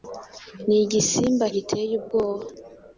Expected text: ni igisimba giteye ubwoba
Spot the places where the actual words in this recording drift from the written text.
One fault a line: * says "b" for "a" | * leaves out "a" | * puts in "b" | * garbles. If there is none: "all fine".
all fine